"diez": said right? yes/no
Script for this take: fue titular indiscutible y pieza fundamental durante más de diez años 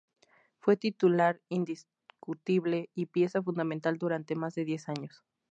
yes